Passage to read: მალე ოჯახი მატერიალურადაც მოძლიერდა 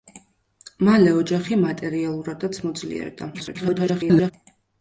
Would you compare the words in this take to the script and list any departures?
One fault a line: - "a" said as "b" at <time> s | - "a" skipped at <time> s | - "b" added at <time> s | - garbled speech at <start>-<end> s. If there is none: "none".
- garbled speech at 3.3-4.3 s